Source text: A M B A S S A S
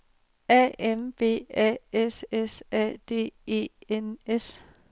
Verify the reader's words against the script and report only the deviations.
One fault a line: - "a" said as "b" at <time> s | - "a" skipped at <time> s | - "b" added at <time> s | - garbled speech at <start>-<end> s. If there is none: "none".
- "D E N" added at 3.1 s